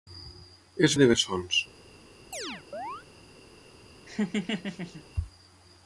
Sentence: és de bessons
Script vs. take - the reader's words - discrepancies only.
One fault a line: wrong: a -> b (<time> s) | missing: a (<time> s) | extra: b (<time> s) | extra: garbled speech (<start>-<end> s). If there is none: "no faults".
no faults